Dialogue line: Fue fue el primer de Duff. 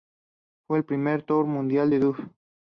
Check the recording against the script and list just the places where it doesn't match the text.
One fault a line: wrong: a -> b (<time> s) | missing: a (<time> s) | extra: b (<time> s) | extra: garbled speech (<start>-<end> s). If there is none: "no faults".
missing: fue (0.8 s)
extra: tour mundial (1.2 s)